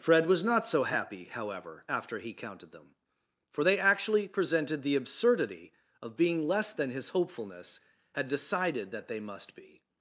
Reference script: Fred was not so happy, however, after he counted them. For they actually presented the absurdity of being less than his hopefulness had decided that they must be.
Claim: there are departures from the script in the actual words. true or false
false